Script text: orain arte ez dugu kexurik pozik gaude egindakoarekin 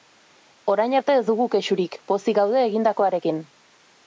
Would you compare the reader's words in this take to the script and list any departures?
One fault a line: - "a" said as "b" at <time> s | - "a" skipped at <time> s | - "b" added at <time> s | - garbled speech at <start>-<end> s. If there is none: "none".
none